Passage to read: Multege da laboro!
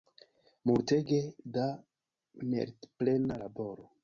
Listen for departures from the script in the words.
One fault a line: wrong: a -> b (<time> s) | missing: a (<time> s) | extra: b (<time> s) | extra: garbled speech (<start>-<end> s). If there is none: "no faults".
extra: meritplena (2.5 s)